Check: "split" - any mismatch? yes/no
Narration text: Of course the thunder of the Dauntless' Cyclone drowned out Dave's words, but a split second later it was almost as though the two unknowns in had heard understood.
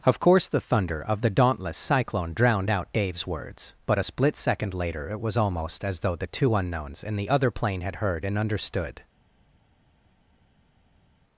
no